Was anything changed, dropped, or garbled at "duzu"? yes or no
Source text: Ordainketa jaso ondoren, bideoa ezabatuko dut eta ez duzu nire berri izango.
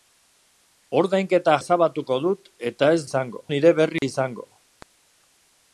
yes